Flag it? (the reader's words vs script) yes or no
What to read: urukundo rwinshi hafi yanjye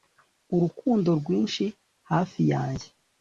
no